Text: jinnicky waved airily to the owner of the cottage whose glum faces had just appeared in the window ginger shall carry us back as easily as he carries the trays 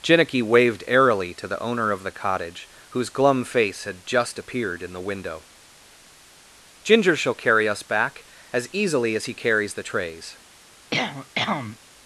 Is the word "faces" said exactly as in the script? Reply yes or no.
no